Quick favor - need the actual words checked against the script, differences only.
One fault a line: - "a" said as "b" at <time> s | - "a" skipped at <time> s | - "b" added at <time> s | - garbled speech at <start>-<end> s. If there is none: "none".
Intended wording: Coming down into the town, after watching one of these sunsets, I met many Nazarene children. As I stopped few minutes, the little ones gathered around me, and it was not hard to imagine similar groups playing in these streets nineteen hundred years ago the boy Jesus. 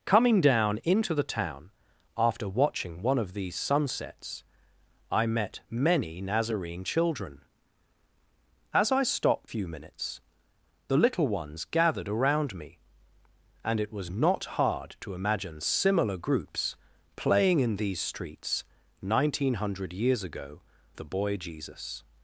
none